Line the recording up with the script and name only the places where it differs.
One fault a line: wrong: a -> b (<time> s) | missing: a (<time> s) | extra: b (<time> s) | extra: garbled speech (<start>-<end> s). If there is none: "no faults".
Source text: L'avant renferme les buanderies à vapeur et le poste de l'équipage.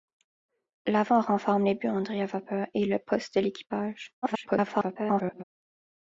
extra: garbled speech (4.2-5.4 s)